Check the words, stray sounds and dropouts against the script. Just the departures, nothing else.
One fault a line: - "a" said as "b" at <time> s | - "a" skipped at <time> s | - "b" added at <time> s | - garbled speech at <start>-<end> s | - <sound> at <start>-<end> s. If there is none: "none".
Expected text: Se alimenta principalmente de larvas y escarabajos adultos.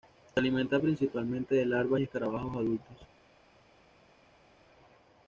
none